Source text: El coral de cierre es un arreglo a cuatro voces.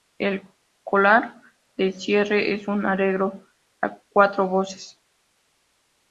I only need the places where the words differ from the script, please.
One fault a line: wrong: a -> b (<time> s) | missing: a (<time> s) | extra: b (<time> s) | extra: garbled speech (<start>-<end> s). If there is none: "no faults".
no faults